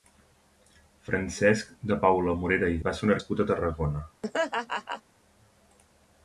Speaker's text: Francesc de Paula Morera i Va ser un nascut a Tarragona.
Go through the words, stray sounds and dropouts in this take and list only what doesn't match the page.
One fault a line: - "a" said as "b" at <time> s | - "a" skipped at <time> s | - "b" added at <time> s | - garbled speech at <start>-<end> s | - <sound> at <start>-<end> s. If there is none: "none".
- laugh at 4.2-5.0 s